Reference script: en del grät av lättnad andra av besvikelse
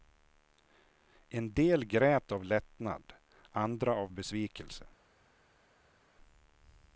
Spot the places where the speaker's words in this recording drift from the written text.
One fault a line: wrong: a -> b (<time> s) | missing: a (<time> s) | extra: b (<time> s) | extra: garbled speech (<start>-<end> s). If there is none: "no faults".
no faults